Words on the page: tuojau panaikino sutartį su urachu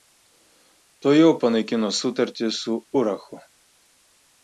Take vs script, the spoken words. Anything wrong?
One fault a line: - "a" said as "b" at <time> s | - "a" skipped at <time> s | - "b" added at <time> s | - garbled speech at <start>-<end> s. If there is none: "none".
none